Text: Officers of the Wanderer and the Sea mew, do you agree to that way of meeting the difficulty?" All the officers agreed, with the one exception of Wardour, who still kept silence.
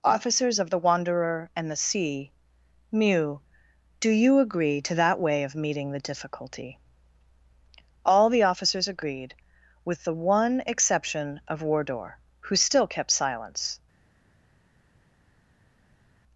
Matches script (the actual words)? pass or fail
pass